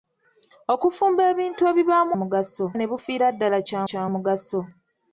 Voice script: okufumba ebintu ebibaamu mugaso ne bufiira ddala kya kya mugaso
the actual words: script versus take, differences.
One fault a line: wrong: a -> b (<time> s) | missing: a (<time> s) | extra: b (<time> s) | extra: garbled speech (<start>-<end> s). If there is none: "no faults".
no faults